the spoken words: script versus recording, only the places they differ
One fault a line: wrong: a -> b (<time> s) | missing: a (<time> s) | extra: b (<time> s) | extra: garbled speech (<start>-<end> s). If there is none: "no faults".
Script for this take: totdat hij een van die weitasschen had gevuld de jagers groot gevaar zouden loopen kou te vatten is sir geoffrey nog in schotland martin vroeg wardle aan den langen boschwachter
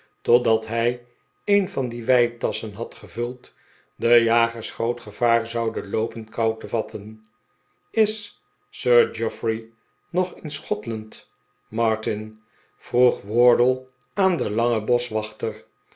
no faults